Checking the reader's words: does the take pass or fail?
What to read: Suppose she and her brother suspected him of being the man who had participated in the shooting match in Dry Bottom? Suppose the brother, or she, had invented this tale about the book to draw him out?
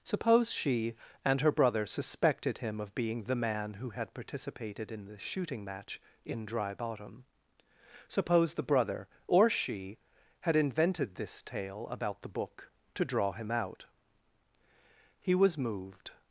fail